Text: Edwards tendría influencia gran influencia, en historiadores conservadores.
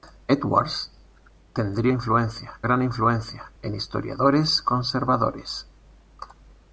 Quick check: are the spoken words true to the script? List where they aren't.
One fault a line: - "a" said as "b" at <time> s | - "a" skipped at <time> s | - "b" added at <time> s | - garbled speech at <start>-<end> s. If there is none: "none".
none